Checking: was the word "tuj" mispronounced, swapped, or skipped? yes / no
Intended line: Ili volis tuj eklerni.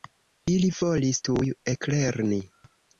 no